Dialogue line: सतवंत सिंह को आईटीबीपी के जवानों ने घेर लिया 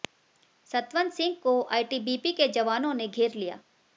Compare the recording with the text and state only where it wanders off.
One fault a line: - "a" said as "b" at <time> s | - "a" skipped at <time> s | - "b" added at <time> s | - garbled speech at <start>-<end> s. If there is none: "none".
none